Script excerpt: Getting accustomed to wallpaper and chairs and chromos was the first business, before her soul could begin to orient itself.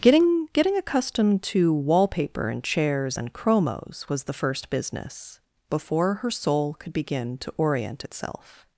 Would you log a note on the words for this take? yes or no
yes